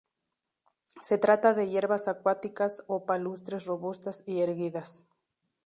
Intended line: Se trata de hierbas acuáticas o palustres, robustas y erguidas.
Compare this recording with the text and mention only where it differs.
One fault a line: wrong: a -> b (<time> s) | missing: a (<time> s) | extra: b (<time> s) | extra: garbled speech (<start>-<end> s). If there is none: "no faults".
no faults